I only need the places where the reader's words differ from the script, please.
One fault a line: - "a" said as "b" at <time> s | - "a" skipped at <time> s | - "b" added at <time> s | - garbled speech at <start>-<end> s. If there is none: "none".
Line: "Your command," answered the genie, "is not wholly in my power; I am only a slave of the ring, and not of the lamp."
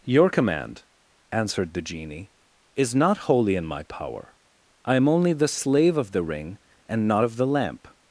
- "a" said as "the" at 5.3 s